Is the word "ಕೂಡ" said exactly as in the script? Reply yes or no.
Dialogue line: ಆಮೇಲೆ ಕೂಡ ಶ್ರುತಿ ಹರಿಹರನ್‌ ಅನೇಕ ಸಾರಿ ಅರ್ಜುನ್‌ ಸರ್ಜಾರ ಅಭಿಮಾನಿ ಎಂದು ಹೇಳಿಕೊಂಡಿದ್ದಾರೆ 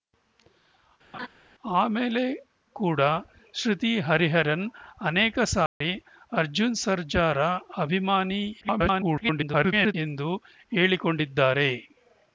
yes